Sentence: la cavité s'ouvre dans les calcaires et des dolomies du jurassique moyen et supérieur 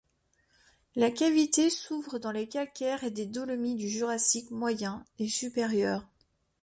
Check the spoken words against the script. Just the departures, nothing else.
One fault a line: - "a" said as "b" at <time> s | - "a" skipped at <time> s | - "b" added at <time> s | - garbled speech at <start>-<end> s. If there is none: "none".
none